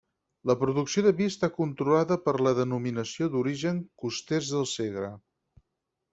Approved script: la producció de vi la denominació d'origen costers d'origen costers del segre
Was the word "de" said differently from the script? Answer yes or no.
no